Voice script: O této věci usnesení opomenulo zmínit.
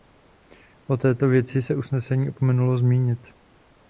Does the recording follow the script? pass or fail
fail